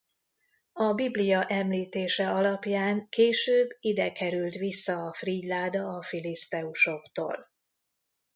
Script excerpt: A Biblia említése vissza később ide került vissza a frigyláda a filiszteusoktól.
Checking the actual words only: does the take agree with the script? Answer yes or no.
no